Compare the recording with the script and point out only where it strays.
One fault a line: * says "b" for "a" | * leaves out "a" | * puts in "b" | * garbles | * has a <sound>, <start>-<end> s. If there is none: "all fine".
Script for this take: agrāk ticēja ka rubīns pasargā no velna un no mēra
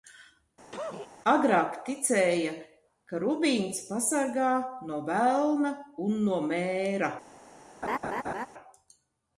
* has a cough, 0.7-1.1 s
* has a laugh, 7.8-8.5 s